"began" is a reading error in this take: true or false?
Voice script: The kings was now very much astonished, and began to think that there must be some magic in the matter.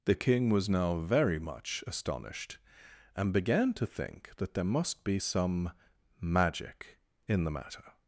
false